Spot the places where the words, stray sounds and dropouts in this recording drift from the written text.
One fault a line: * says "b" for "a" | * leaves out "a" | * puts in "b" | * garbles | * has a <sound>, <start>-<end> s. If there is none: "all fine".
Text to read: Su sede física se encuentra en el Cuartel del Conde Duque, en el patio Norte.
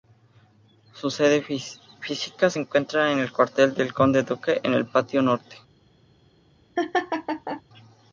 * has a laugh, 6.8-7.6 s